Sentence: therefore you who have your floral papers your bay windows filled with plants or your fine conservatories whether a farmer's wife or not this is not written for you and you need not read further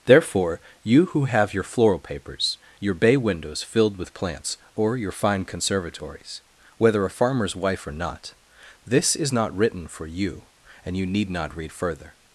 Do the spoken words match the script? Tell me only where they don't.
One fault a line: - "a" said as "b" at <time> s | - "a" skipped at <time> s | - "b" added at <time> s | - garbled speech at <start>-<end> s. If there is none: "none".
none